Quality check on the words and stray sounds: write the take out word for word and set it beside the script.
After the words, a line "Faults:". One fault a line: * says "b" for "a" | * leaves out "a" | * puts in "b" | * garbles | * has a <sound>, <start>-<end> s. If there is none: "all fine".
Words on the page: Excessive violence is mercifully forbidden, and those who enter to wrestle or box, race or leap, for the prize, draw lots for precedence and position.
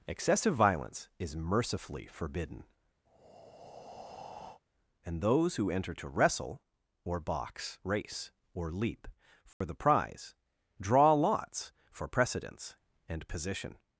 Excessive violence is mercifully forbidden, and those who enter to wrestle or box, race or leap, for the prize, draw lots for precedence and position.
Faults:
* has a breath, 3.1-4.6 s
* has a dropout, 9.5-9.6 s